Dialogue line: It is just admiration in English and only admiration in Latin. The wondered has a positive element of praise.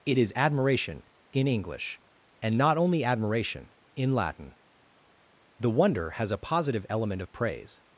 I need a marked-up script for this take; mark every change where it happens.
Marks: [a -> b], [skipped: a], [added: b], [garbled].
It is [skipped: just] admiration in English and [added: not] only admiration in Latin. The [wondered -> wonder] has a positive element of praise.